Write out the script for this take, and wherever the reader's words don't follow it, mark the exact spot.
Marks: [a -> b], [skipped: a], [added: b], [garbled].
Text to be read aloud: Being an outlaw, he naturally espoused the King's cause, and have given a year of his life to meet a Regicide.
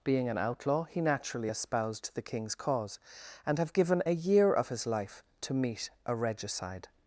Being an outlaw, he naturally espoused the King's cause, and have given a year of his life to meet a Regicide.